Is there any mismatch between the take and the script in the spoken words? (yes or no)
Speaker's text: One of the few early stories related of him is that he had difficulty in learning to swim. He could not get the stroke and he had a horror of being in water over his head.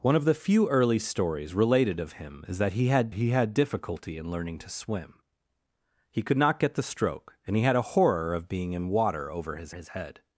yes